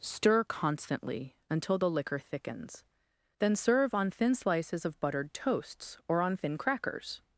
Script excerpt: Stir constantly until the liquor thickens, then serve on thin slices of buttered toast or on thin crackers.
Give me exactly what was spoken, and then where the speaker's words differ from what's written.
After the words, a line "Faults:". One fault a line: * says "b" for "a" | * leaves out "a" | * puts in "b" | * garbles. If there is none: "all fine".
Stir constantly until the liquor thickens, then serve on thin slices of buttered toasts or on thin crackers.
Faults:
* says "toasts" for "toast"